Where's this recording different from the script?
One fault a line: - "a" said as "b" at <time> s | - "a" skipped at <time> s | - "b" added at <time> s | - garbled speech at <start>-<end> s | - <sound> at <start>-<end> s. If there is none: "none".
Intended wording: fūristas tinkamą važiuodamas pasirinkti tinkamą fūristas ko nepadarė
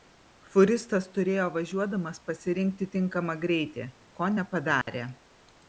- "tinkamą" said as "turėjo" at 1.2 s
- "fūristas" said as "greitį" at 3.5 s
- dropout at 4.8-4.9 s